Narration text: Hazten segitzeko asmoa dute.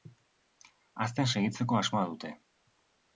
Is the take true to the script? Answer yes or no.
yes